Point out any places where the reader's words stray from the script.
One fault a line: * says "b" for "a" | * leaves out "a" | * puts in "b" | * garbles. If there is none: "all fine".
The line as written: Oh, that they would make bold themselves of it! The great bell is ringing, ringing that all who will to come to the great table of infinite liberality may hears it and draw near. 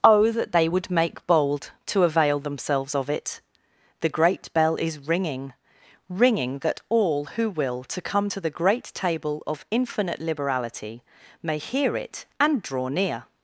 * puts in "to avail"
* says "hear" for "hears"